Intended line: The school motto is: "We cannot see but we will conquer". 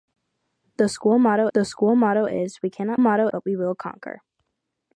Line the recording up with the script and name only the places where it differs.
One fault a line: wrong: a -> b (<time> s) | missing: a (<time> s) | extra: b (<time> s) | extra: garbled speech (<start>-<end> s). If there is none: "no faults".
extra: the school motto (1.5 s)
wrong: see -> motto (3.0 s)